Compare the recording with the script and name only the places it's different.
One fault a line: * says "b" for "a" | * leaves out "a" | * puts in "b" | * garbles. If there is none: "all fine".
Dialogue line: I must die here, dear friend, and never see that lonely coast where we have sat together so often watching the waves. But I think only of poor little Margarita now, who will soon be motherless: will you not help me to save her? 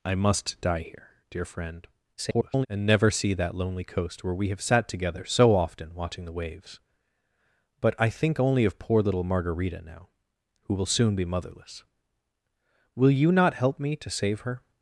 * garbles